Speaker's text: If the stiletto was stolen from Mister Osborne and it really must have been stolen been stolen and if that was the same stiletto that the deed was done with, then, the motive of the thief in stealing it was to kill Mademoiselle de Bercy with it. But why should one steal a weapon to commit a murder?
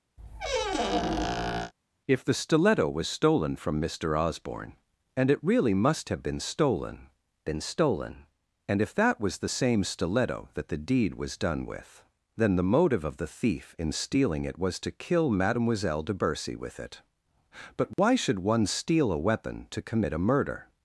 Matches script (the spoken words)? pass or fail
pass